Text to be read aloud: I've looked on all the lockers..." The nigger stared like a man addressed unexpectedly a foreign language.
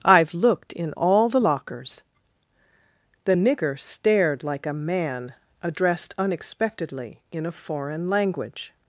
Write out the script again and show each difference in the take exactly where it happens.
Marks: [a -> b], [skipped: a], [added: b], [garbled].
I've looked [on -> in] all the lockers..." The nigger stared like a man addressed unexpectedly [added: in] a foreign language.